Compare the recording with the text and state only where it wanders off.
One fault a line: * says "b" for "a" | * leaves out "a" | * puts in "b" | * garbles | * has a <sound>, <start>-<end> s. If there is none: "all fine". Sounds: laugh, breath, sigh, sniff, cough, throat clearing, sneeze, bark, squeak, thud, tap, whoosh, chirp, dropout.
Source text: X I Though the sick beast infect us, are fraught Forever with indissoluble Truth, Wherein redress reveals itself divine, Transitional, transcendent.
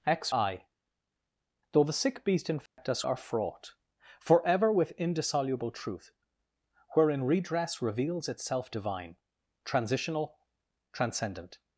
* has a dropout, 2.7-2.8 s